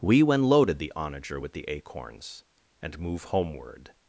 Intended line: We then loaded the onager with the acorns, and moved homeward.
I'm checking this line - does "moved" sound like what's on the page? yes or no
no